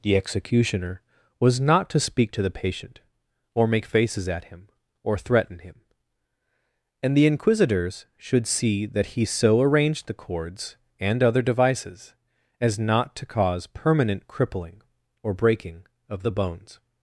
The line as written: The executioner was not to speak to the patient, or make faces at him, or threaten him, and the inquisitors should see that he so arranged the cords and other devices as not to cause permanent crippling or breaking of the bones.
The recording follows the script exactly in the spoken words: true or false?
true